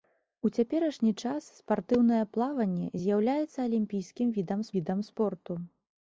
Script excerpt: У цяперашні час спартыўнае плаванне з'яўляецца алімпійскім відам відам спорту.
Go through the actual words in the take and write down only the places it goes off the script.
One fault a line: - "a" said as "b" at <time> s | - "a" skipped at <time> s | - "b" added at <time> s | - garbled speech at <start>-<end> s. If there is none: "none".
none